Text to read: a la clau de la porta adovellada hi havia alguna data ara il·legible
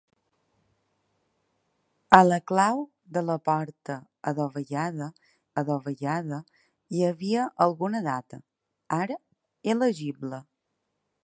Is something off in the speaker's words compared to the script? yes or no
yes